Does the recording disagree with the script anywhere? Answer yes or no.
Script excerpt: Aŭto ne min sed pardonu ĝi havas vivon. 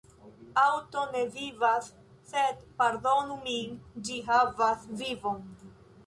yes